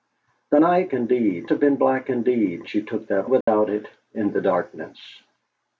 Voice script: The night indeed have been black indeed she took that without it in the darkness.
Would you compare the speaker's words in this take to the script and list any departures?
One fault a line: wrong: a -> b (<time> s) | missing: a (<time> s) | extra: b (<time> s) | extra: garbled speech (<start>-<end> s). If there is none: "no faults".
no faults